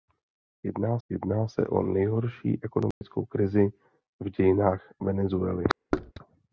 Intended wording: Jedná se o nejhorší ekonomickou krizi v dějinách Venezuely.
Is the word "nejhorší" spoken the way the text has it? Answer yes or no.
yes